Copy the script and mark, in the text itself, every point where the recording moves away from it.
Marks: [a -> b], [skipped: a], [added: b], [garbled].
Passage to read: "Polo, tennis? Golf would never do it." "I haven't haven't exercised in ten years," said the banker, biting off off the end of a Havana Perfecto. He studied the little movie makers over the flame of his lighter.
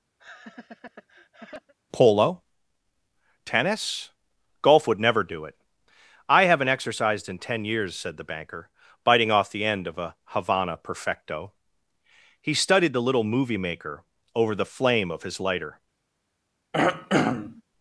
"Polo, tennis? Golf would never do it." "I haven't [skipped: haven't] exercised in ten years," said the banker, biting off [skipped: off] the end of a Havana Perfecto. He studied the little movie [makers -> maker] over the flame of his lighter.